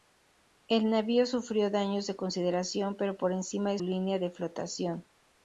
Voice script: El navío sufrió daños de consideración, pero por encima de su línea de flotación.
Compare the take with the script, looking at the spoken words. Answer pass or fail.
fail